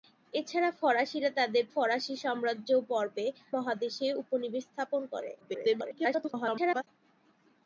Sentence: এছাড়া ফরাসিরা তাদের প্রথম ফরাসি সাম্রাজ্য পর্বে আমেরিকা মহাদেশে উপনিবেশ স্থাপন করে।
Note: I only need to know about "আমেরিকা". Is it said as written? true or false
false